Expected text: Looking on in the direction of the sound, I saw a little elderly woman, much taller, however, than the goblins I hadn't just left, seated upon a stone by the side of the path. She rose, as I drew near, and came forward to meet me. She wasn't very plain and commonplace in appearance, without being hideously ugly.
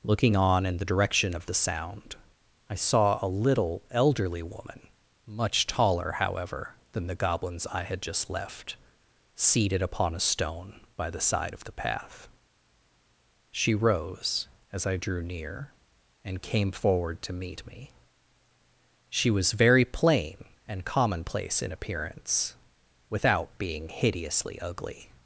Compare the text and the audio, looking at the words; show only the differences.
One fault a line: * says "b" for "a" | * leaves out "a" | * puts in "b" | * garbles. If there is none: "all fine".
* says "had" for "hadn't"
* says "was" for "wasn't"